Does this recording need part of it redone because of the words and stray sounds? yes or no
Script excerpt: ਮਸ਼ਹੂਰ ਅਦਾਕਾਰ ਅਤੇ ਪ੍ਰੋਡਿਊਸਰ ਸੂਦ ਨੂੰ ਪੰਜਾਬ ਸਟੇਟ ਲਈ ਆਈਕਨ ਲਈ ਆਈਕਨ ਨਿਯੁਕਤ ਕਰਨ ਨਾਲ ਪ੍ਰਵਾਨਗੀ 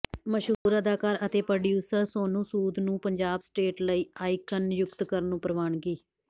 yes